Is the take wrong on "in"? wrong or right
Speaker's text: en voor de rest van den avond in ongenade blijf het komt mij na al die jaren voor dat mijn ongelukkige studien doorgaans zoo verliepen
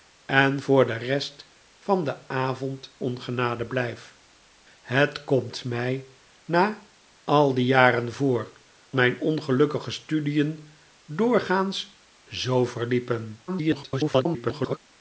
wrong